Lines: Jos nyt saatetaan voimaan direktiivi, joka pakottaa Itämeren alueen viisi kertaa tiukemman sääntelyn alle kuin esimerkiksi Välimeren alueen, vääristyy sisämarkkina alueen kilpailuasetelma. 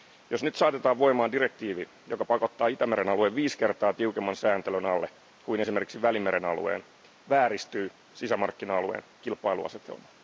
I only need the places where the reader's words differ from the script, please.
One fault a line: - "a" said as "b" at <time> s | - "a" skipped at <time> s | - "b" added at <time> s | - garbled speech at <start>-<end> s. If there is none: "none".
none